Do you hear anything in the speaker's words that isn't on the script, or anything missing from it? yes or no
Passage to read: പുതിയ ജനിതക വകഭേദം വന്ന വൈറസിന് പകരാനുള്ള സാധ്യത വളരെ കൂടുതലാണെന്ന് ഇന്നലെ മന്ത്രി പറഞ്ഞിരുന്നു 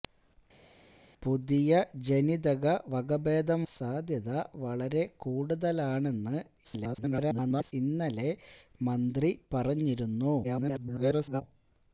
yes